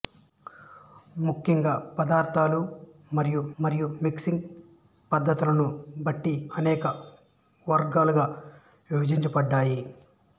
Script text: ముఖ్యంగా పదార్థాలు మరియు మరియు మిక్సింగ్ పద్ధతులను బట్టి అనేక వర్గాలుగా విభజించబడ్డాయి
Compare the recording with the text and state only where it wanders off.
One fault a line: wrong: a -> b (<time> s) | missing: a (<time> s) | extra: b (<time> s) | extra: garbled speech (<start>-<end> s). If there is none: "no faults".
no faults